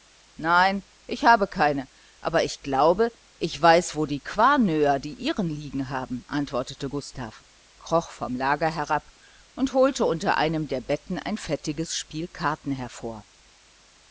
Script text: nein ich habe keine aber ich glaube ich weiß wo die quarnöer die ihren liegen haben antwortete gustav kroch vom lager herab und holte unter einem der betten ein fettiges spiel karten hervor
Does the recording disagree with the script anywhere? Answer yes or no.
no